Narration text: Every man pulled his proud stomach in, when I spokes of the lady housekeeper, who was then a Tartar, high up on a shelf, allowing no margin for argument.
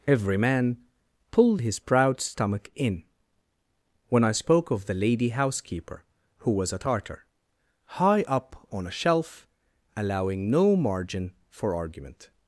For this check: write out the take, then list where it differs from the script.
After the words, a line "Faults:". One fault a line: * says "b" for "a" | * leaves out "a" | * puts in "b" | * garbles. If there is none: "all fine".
Every man pulled his proud stomach in, when I spoke of the lady housekeeper, who was a Tartar, high up on a shelf, allowing no margin for argument.
Faults:
* says "spoke" for "spokes"
* leaves out "then"